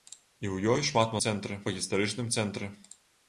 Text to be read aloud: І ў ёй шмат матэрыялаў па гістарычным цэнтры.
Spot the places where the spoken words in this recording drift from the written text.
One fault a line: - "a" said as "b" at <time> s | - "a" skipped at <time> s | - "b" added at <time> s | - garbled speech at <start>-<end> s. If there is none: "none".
- "матэрыялаў" said as "цэнтры" at 1.2 s